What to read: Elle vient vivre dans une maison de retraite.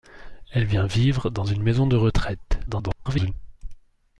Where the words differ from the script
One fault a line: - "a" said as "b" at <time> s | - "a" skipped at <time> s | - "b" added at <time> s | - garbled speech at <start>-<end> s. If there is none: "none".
- garbled speech at 2.7-3.3 s